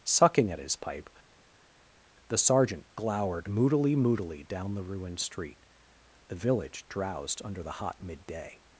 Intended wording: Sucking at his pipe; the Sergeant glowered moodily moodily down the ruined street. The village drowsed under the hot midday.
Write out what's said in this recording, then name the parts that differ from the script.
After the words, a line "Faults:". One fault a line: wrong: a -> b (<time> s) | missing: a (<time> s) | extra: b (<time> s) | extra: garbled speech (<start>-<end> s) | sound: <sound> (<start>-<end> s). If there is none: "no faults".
Sucking at his pipe; the Sergeant glowered moodily moodily down the ruined street. The village drowsed under the hot midday.
Faults:
no faults